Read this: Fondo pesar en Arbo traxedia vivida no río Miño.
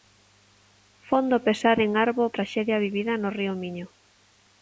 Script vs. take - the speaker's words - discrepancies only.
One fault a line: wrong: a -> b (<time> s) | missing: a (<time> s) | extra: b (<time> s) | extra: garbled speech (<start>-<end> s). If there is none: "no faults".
no faults